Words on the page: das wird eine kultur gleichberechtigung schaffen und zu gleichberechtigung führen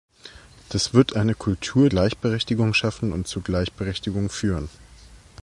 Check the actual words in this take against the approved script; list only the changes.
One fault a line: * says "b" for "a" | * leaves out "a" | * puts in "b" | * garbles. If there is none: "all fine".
all fine